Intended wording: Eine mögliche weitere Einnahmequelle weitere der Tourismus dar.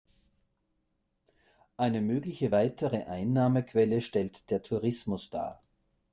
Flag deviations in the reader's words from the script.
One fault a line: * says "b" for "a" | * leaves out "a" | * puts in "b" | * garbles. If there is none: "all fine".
* says "stellt" for "weitere"